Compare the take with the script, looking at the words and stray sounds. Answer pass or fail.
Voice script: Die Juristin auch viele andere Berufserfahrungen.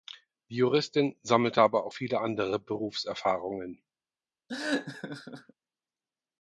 fail